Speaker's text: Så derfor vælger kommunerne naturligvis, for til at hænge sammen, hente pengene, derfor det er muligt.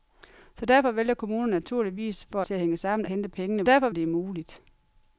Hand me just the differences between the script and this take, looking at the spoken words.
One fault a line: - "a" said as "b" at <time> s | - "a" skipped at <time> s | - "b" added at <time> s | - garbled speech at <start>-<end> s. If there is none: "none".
none